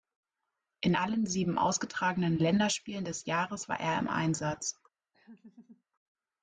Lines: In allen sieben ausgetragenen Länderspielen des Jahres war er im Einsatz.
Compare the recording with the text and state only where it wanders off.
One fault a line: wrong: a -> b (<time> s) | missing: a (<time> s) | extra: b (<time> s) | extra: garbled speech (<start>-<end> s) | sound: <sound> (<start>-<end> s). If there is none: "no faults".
sound: laugh (5.1-5.8 s)